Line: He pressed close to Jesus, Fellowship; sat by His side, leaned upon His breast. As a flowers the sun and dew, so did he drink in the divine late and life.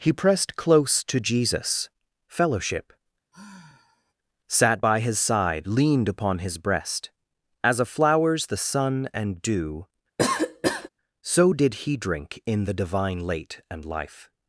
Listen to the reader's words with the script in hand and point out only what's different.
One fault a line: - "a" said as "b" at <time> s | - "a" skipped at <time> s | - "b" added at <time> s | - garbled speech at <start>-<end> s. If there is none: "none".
none